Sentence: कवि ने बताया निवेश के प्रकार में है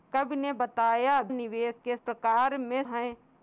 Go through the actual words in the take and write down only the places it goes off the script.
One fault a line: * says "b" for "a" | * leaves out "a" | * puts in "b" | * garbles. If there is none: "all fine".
all fine